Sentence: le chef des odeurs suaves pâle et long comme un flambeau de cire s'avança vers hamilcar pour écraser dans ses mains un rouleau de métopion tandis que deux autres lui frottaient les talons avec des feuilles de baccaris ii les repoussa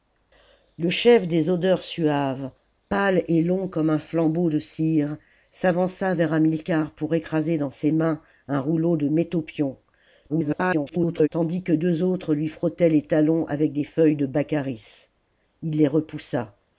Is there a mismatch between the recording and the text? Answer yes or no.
yes